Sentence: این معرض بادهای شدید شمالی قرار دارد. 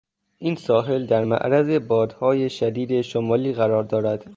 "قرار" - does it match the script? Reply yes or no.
yes